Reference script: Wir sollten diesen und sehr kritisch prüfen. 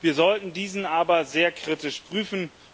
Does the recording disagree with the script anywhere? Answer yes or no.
yes